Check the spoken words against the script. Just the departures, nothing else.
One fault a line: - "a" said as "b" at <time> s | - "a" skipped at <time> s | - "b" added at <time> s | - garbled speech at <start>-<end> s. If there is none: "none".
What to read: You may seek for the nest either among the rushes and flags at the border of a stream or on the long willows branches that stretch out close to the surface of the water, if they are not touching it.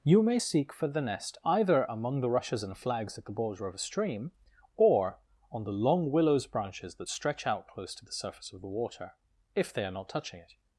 none